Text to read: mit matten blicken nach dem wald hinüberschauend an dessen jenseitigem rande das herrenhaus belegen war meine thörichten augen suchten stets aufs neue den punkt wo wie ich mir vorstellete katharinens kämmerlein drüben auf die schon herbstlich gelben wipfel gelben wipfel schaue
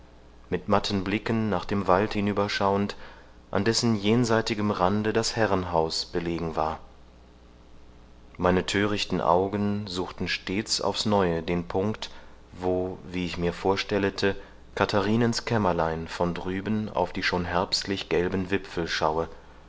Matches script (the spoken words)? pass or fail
fail